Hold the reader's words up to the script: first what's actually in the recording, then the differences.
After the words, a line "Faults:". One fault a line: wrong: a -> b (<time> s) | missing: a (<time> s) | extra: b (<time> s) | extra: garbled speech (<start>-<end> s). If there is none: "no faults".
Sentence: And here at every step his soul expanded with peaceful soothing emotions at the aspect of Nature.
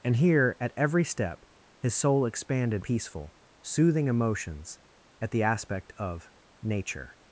And here at every step his soul expanded peaceful soothing emotions at the aspect of Nature.
Faults:
missing: with (2.9 s)